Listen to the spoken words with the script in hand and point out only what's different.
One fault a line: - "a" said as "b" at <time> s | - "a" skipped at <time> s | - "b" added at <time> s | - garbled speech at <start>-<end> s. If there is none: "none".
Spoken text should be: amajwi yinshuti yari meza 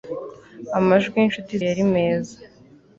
none